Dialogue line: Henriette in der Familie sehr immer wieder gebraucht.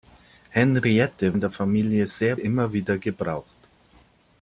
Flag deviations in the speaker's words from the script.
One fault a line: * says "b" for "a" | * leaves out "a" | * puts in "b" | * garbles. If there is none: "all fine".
all fine